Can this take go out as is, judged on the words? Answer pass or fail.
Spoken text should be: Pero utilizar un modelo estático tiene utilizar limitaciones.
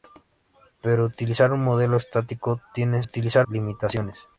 pass